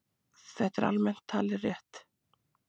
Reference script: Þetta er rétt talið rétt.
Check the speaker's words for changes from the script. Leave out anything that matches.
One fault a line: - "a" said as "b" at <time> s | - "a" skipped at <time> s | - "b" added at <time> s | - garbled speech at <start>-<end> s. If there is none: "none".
- "rétt" said as "almennt" at 0.9 s